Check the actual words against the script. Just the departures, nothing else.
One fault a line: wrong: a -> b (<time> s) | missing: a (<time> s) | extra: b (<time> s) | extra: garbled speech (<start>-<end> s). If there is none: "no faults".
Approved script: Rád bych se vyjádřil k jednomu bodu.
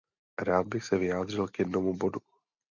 no faults